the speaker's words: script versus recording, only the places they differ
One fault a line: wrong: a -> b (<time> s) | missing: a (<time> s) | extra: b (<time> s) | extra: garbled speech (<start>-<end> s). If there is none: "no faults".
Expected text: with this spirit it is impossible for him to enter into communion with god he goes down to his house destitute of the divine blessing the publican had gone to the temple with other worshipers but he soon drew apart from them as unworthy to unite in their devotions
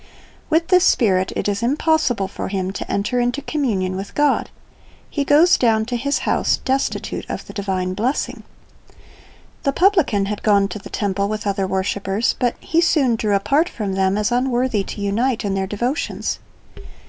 no faults